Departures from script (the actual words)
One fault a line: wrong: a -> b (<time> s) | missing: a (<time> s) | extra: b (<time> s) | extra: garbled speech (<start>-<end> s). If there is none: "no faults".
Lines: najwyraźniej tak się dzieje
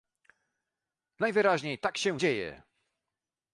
no faults